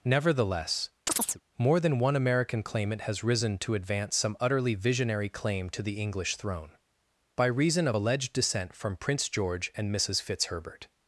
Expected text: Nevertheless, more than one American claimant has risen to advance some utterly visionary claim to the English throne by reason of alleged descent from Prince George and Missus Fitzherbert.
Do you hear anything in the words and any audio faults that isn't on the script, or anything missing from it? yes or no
yes